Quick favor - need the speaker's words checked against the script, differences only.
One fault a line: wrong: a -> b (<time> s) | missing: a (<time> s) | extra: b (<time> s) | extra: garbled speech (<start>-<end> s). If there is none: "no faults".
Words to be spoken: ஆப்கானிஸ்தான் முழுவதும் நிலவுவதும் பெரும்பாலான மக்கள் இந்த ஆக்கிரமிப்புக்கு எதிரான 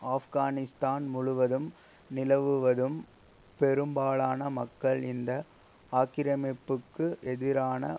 no faults